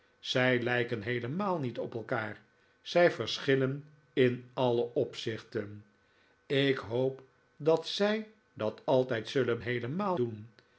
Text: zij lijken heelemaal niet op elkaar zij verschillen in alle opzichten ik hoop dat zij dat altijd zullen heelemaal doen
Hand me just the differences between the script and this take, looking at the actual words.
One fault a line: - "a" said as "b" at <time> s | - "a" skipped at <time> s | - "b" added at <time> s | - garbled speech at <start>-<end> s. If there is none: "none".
none